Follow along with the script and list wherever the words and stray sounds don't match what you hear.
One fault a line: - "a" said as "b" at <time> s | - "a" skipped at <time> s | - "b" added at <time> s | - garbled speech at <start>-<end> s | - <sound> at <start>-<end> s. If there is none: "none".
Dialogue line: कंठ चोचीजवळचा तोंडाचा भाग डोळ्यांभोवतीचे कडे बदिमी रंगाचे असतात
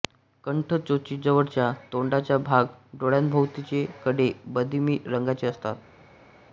none